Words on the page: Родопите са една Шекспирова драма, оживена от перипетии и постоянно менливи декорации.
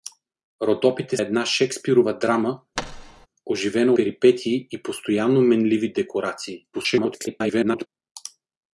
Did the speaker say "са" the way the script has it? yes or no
no